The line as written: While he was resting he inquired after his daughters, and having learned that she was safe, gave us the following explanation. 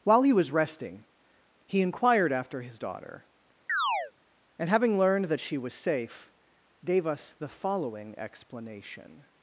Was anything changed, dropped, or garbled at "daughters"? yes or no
yes